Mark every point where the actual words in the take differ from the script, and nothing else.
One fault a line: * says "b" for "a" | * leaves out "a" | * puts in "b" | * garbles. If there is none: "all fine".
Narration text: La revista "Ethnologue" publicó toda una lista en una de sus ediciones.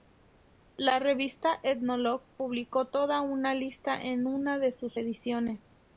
all fine